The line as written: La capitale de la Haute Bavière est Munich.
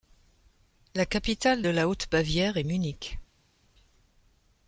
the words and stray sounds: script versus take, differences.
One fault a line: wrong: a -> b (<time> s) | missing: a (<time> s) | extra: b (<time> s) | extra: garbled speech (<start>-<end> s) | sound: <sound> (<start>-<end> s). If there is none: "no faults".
no faults